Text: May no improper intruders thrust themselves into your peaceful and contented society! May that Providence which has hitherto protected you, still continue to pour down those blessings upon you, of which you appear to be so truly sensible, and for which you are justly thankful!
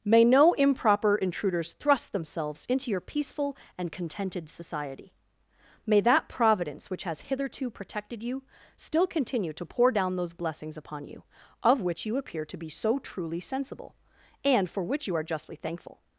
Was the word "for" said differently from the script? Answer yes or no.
no